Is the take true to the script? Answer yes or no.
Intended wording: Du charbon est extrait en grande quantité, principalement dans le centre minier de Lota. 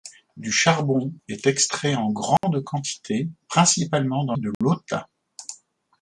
no